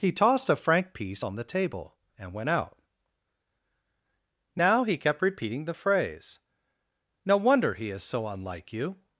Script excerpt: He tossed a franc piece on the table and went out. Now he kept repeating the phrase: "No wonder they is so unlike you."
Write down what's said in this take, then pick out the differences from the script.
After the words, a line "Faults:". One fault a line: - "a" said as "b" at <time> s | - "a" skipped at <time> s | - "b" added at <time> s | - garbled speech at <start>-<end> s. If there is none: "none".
He tossed a franc piece on the table and went out. Now he kept repeating the phrase: "No wonder he is so unlike you."
Faults:
- "they" said as "he" at 7.7 s